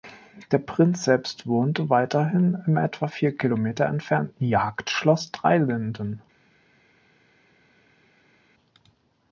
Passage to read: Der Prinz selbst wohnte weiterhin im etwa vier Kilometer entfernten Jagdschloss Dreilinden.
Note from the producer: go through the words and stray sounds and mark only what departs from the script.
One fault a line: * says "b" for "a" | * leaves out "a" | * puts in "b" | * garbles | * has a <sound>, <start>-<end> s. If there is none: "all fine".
all fine